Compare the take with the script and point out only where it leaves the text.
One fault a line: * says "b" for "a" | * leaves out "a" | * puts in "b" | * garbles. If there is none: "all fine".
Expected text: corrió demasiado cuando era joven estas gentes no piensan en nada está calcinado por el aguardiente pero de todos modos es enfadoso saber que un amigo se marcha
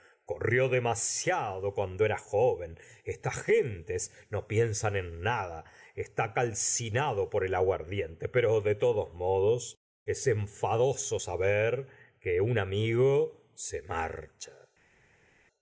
all fine